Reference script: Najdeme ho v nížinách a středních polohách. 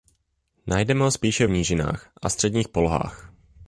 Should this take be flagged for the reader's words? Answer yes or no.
yes